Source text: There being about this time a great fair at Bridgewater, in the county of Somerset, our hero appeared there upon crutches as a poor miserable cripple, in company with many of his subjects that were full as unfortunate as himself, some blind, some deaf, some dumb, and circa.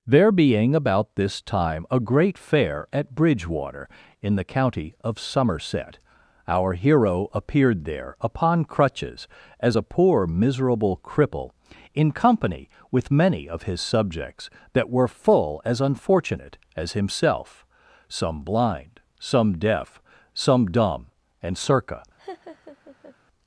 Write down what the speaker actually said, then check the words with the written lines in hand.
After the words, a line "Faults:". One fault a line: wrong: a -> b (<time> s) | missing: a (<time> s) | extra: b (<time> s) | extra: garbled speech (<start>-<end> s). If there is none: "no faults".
There being about this time a great fair at Bridgewater, in the county of Somerset, our hero appeared there upon crutches as a poor miserable cripple, in company with many of his subjects that were full as unfortunate as himself, some blind, some deaf, some dumb, and circa.
Faults:
no faults